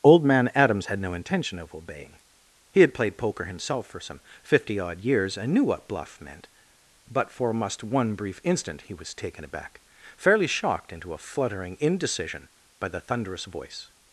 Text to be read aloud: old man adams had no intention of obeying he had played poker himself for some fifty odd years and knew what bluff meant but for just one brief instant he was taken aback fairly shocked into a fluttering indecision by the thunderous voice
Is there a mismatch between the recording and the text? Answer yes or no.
yes